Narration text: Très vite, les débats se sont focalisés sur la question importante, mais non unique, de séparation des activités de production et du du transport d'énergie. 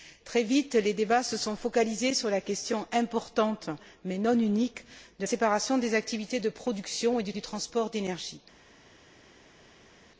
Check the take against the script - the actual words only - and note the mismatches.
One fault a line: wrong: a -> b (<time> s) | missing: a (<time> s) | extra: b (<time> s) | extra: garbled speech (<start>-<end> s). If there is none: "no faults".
no faults